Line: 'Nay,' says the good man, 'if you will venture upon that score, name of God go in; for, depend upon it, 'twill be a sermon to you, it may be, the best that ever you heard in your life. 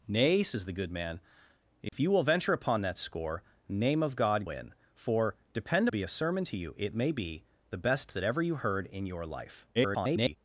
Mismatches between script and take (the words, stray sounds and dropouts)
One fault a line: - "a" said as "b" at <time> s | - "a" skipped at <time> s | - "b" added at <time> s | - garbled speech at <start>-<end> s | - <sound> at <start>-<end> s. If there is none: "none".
- dropout at 1.9-1.9 s
- "go" skipped at 4.5 s
- "upon it twill" skipped at 5.9 s
- garbled speech at 9.7-10.4 s